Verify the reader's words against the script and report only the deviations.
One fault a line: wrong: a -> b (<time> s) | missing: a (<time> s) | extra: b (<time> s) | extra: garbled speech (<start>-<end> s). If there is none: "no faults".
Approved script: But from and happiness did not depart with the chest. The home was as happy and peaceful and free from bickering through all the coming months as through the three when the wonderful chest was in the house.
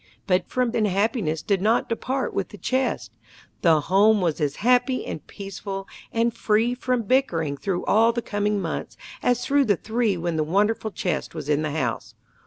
no faults